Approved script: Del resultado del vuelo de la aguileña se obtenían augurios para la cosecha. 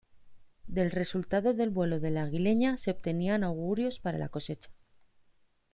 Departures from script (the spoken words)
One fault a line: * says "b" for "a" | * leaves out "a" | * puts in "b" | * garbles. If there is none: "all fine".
all fine